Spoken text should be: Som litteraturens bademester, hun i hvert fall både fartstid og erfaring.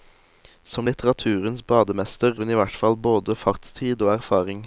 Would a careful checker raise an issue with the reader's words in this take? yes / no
no